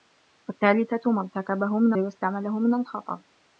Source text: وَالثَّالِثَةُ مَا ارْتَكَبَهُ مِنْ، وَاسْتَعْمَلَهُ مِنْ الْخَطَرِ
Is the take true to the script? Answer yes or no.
yes